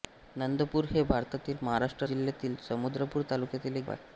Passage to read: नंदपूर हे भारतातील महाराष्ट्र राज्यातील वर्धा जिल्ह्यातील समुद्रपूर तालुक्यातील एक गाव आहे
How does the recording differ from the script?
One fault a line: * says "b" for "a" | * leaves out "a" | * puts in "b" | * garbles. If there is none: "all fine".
* leaves out "राज्यातील वर्धा"
* leaves out "गाव"